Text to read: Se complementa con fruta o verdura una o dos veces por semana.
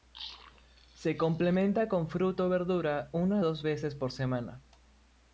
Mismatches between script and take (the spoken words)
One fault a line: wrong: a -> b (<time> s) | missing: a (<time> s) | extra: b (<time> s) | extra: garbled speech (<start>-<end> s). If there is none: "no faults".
no faults